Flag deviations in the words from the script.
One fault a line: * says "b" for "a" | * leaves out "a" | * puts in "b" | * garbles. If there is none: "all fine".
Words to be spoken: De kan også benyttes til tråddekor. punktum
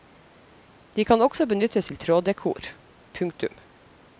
all fine